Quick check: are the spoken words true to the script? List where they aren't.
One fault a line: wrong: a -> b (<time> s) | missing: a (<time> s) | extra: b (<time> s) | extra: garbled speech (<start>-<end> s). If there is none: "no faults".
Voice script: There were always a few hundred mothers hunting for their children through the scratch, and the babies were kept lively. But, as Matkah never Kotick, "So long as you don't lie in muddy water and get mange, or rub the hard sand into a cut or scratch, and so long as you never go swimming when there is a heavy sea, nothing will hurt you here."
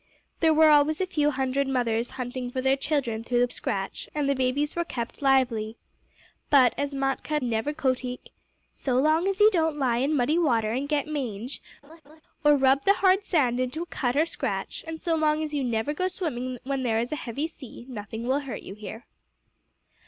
no faults